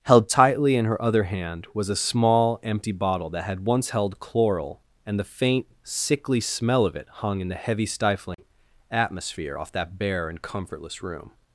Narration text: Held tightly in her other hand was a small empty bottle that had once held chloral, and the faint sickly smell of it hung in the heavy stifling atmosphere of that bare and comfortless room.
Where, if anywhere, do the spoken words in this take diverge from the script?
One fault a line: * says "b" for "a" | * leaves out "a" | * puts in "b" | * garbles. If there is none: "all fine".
* says "off" for "of"